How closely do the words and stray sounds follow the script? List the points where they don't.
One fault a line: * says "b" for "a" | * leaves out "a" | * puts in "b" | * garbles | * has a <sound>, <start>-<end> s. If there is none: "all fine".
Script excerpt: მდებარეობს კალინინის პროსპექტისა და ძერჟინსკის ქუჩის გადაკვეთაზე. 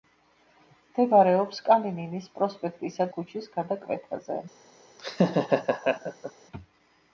* leaves out "და ძერჟინსკის"
* has a laugh, 5.0-6.3 s